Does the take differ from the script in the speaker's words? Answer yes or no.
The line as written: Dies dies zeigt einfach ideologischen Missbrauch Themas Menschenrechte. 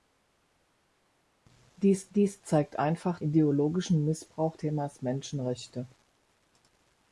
no